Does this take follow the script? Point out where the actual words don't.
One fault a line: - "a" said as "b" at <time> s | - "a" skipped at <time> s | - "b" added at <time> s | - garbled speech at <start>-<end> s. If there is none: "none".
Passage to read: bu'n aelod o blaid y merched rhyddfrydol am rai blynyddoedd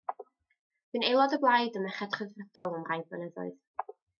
none